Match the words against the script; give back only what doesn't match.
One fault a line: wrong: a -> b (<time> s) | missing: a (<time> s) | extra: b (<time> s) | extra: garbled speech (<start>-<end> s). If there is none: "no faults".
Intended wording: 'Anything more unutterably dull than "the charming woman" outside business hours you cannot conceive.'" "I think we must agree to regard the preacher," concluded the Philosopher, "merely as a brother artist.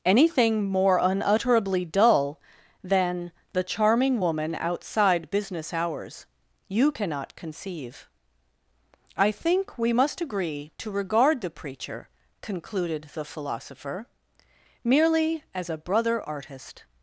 no faults